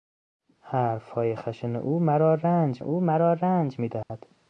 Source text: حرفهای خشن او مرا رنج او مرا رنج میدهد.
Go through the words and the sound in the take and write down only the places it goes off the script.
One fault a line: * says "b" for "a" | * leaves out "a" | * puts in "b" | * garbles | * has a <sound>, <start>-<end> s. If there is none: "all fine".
* has a dropout, 4.0-4.1 s